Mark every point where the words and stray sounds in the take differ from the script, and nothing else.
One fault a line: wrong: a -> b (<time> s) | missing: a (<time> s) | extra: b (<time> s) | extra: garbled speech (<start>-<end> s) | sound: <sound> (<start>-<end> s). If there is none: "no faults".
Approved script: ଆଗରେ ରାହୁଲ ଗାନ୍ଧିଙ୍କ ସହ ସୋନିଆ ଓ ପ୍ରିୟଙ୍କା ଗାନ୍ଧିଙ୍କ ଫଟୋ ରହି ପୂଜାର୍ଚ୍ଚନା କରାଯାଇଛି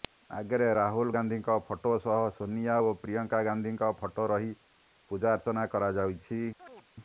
extra: ଫଟୋ (1.7 s)
sound: chirp (6.6-6.9 s)